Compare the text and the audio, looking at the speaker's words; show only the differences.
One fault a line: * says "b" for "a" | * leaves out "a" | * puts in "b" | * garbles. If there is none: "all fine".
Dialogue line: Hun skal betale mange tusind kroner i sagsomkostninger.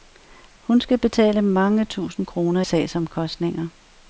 * leaves out "i"